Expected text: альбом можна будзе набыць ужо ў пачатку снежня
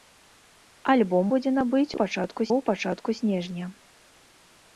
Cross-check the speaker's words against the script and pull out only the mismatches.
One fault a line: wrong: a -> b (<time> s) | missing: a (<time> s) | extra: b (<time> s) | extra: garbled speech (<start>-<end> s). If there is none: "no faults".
missing: можна (1.2 s)
wrong: ужо -> пачатку (2.0 s)